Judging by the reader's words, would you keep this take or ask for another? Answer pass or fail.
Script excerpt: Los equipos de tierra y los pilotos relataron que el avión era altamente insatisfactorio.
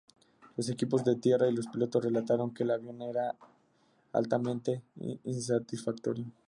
pass